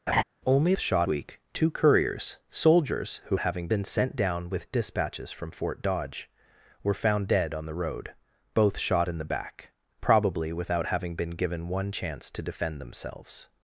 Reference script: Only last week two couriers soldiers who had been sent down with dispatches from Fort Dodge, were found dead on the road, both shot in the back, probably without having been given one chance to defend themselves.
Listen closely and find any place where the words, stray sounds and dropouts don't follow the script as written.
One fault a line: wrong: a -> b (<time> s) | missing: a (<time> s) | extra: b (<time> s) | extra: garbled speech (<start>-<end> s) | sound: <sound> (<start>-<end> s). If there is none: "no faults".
sound: laugh (0.1-0.2 s)
wrong: last -> shot (0.8 s)
wrong: had -> having (3.4 s)